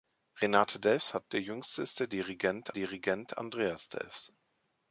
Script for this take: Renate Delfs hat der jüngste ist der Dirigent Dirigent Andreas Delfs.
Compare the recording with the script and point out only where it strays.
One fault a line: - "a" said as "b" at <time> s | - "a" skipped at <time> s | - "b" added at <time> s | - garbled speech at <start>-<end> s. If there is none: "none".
none